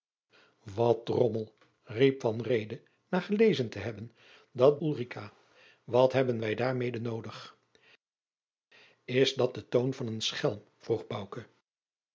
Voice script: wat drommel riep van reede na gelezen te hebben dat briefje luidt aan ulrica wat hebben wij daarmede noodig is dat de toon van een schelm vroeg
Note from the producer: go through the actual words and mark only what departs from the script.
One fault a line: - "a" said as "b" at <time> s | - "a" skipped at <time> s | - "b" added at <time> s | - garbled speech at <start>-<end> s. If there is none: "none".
- "briefje luidt aan" skipped at 4.8 s